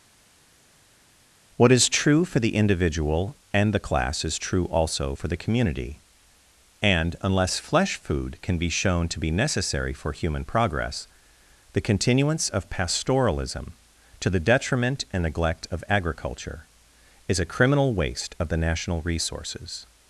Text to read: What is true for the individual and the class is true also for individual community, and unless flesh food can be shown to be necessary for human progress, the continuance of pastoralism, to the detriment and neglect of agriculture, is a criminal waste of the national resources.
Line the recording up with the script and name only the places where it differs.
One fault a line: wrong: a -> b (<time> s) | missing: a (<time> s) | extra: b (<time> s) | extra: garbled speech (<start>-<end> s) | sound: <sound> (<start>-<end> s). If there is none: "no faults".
wrong: individual -> the (5.3 s)